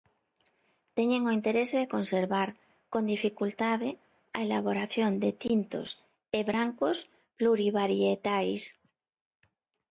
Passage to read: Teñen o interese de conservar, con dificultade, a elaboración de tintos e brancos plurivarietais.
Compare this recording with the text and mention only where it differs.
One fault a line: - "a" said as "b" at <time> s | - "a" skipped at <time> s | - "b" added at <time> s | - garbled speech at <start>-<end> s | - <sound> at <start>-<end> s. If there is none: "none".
none